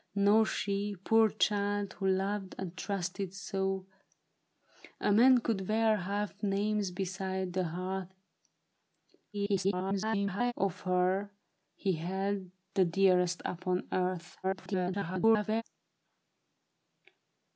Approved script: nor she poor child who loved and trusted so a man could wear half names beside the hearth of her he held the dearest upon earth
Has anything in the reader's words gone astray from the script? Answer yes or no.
yes